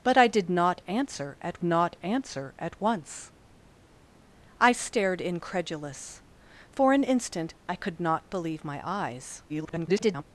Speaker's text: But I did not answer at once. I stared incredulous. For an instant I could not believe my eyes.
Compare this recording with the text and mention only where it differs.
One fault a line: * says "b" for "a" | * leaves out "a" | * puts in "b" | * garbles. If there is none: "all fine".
* puts in "not answer at"
* garbles